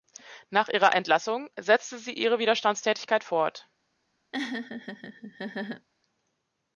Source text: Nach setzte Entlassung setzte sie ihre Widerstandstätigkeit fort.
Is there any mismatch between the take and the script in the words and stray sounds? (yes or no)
yes